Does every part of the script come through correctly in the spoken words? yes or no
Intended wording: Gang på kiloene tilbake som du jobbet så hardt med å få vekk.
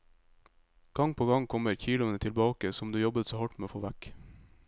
no